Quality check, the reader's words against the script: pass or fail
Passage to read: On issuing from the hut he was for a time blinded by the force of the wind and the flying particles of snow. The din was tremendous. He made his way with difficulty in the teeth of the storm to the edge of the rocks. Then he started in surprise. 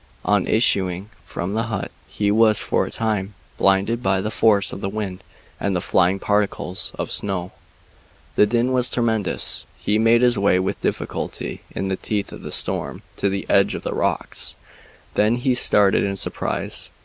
pass